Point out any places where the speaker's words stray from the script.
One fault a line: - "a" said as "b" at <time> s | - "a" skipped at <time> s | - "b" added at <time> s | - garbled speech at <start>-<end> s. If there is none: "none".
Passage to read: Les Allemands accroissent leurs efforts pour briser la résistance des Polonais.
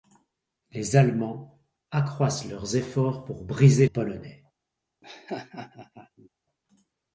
- "la résistance des" skipped at 3.9 s